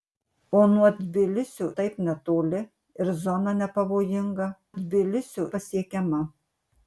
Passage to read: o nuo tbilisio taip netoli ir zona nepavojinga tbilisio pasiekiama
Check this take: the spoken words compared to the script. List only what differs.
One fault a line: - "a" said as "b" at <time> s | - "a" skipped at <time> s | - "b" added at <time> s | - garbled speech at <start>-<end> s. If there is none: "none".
none